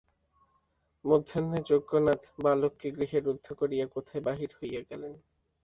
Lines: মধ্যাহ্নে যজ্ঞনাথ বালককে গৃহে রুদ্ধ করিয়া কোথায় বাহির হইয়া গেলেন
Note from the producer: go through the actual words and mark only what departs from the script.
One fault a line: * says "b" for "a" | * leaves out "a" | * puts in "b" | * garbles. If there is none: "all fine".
all fine